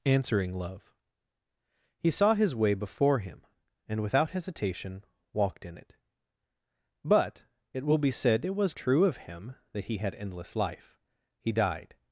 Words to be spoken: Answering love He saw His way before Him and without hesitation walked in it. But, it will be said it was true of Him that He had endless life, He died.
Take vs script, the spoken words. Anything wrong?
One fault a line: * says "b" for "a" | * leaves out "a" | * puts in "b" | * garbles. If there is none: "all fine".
all fine